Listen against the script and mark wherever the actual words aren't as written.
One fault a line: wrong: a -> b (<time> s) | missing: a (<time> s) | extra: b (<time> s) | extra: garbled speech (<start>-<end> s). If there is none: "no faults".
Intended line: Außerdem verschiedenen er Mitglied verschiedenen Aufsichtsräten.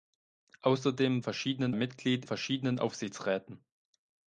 no faults